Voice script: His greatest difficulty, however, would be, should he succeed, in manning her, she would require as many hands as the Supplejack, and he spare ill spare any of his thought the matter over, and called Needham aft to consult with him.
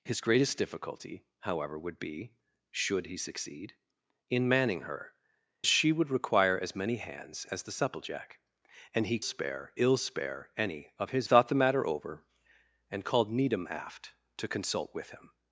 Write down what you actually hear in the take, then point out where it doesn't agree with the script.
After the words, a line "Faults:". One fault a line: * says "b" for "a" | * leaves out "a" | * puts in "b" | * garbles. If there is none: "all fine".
His greatest difficulty, however, would be, should he succeed, in manning her, she would require as many hands as the Supplejack, and he spare ill spare any of his thought the matter over, and called Needham aft to consult with him.
Faults:
all fine